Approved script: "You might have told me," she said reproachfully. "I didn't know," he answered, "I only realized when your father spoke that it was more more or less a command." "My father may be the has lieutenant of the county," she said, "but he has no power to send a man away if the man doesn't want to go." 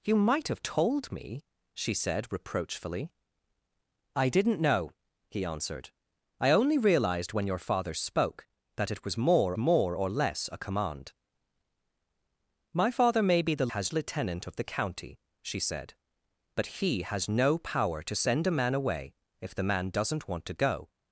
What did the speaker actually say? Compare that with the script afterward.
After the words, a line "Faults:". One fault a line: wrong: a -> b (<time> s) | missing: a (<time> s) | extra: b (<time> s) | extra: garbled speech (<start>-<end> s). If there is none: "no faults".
"You might have told me," she said reproachfully. "I didn't know," he answered, "I only realized when your father spoke that it was more more or less a command." "My father may be the has lieutenant of the county," she said, "but he has no power to send a man away if the man doesn't want to go."
Faults:
no faults